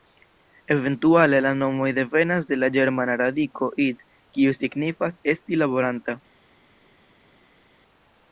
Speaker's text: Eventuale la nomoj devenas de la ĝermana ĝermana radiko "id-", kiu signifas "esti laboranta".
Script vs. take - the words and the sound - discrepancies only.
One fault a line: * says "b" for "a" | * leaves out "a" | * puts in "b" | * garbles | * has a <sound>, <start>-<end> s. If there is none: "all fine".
* leaves out "ĝermana"